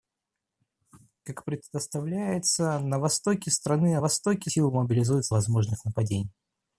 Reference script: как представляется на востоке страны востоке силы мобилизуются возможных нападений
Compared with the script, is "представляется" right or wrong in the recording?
right